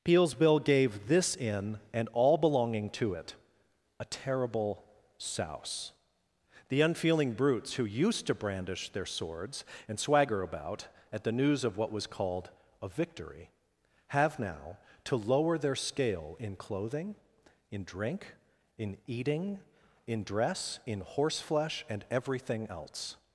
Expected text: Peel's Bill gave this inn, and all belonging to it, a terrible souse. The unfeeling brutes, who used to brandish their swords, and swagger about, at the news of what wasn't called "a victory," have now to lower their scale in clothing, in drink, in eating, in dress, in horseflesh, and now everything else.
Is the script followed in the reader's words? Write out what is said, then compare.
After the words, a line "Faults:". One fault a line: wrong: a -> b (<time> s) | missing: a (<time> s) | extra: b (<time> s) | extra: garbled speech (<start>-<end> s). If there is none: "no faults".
Peel's Bill gave this inn, and all belonging to it, a terrible souse. The unfeeling brutes, who used to brandish their swords, and swagger about, at the news of what was called "a victory," have now to lower their scale in clothing, in drink, in eating, in dress, in horseflesh, and everything else.
Faults:
wrong: wasn't -> was (11.9 s)
missing: now (22.0 s)